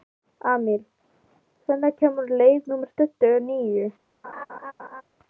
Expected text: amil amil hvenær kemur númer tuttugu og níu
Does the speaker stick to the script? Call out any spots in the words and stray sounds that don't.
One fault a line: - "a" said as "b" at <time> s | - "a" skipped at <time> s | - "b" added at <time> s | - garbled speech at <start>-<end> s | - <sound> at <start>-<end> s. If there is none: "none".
- "amil" skipped at 0.8 s
- "leið" added at 2.4 s
- laugh at 4.2-5.0 s